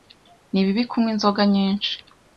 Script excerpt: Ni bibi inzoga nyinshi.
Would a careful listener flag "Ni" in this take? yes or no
no